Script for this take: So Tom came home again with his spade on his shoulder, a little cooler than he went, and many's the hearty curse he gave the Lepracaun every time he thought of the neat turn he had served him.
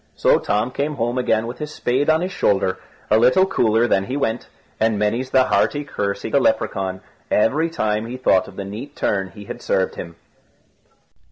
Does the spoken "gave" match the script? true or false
false